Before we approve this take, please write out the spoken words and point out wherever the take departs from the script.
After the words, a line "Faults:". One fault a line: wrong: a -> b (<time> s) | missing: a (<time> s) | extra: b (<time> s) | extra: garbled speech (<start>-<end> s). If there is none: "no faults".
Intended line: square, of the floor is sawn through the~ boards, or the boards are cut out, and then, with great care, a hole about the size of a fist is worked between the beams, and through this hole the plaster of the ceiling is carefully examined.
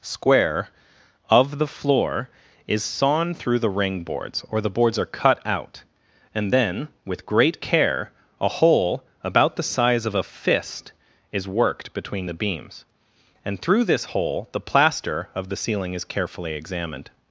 square, of the floor is sawn through the~ ring boards, or the boards are cut out, and then, with great care, a hole about the size of a fist is worked between the beams, and through this hole the plaster of the ceiling is carefully examined.
Faults:
extra: ring (3.7 s)